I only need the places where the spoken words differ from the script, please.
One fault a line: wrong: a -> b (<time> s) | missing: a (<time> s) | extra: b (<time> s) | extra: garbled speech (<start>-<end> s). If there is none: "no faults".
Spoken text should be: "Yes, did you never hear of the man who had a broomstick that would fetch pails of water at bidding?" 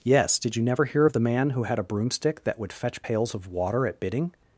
no faults